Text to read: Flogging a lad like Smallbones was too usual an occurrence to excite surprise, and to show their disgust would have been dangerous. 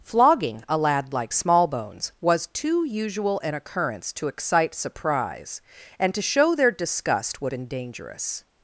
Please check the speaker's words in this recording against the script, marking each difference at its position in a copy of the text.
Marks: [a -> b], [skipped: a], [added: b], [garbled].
Flogging a lad like Smallbones was too usual an occurrence to excite surprise, and to show their disgust would [skipped: have] been dangerous.